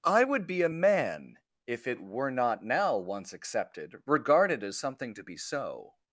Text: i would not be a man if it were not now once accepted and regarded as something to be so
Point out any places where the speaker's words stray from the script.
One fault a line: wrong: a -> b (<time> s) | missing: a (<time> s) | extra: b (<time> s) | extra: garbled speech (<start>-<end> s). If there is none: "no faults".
missing: not (0.5 s)
missing: and (4.0 s)